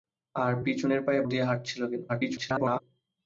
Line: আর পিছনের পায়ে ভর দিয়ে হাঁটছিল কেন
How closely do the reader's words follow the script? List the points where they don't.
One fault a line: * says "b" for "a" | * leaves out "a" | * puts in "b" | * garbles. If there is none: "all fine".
* leaves out "ভর"
* garbles